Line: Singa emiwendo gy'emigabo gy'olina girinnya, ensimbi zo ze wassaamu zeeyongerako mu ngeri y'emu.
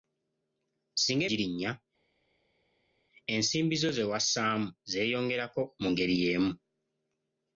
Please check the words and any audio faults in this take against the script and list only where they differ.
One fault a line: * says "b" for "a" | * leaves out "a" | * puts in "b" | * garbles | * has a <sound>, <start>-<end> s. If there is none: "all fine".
* leaves out "emiwendo gy'emigabo gy'olina"